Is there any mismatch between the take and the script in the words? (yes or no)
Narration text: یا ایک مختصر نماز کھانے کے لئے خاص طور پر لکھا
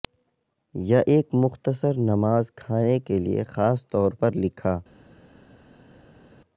no